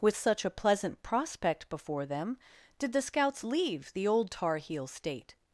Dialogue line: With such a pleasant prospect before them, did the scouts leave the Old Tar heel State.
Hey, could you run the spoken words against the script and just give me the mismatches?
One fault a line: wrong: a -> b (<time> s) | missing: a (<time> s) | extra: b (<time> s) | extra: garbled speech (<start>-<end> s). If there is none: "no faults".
no faults